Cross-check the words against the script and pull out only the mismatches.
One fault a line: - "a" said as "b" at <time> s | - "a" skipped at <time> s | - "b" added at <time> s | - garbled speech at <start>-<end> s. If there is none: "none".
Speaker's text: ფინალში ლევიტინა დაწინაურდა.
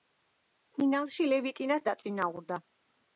none